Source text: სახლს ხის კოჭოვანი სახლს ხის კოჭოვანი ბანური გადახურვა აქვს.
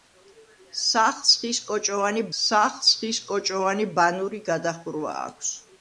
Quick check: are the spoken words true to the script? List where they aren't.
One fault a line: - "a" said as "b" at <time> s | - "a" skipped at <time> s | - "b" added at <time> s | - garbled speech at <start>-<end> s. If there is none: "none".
none